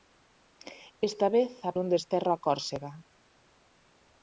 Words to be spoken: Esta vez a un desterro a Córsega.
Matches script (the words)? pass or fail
pass